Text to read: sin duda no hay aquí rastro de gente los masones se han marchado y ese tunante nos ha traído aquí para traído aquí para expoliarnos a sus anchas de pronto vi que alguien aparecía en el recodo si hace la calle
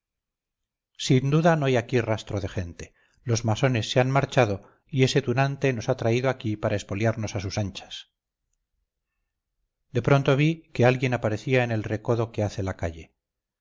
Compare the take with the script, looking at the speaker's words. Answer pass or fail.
fail